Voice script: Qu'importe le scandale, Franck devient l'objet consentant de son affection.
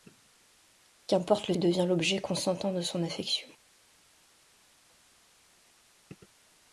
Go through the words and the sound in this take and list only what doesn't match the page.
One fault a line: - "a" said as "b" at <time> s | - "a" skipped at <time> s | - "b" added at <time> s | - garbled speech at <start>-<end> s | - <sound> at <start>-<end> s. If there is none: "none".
- "scandale Franck" skipped at 1.5 s